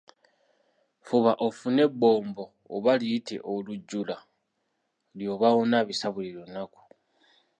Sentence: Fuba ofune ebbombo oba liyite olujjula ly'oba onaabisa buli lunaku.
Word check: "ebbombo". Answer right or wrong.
right